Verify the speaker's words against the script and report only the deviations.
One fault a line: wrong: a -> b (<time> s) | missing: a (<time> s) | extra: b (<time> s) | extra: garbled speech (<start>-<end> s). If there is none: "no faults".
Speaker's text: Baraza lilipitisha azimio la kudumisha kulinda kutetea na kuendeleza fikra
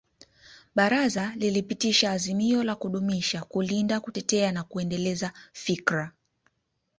no faults